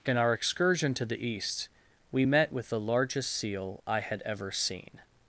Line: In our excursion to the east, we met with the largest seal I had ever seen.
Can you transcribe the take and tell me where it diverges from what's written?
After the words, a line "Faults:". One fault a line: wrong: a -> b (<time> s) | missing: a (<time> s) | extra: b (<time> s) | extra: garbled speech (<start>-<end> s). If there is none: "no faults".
In our excursion to the east, we met with the largest seal I had ever seen.
Faults:
no faults